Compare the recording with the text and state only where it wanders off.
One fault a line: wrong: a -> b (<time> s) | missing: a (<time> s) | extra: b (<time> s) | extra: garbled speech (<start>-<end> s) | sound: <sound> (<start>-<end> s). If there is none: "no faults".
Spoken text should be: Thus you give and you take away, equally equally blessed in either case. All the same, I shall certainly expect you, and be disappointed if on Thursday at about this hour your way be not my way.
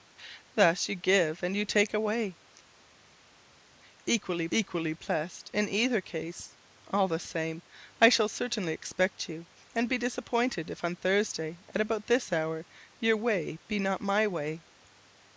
no faults